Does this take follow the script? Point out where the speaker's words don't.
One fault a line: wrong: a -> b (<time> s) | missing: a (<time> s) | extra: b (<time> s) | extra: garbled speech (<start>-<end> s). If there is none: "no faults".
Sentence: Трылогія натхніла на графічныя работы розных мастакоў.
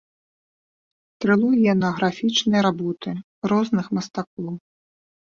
missing: натхніла (1.7 s)